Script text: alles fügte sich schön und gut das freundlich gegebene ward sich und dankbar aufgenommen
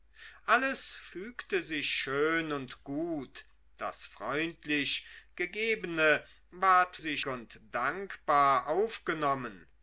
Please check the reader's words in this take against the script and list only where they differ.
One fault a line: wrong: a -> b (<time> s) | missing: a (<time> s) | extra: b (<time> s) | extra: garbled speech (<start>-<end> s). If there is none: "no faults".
no faults